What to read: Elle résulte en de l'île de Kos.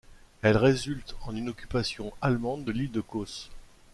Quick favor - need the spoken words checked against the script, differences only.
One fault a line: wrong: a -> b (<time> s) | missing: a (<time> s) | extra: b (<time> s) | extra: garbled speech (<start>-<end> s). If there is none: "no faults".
extra: une occupation allemande (1.4 s)